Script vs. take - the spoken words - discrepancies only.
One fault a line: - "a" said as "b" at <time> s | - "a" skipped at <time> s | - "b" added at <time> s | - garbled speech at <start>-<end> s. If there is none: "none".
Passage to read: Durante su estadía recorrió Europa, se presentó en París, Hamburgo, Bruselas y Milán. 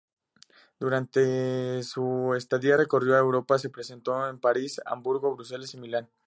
none